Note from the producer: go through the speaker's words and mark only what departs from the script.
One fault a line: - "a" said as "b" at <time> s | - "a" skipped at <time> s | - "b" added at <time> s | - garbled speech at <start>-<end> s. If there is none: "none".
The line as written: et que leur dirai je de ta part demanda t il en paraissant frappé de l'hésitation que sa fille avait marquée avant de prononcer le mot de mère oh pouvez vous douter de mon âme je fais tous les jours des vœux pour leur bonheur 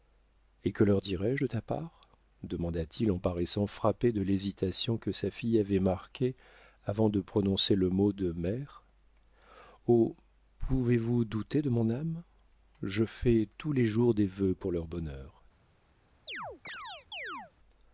none